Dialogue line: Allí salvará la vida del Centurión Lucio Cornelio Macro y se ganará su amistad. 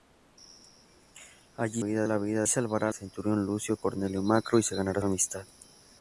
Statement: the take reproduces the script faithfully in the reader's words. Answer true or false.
false